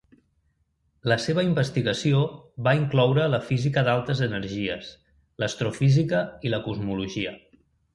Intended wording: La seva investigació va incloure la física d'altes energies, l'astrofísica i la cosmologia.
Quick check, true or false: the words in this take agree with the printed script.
true